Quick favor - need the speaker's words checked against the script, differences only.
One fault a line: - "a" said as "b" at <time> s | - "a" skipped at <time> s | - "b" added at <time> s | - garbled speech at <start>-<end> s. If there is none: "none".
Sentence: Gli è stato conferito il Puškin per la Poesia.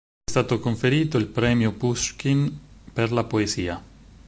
- "Premio" added at 1.3 s